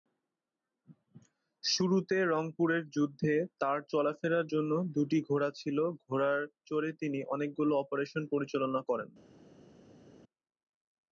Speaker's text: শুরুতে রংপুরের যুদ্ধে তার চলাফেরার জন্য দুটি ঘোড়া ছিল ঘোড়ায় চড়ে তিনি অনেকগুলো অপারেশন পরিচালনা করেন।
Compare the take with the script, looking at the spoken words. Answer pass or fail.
pass